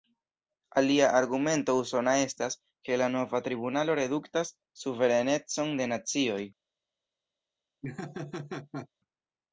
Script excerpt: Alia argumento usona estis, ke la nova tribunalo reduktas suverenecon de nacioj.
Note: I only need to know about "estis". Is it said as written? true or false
false